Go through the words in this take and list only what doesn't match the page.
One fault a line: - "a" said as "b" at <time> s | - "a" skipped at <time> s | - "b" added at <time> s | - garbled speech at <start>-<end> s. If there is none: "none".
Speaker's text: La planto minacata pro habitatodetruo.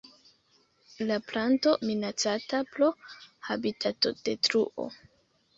none